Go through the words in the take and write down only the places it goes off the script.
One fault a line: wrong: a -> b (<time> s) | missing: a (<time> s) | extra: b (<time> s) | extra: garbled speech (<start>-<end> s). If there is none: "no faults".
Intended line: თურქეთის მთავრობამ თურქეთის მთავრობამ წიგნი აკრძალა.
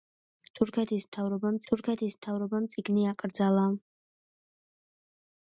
no faults